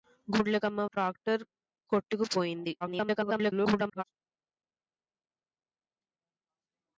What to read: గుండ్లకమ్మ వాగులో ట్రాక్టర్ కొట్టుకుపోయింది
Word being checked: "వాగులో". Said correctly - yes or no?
no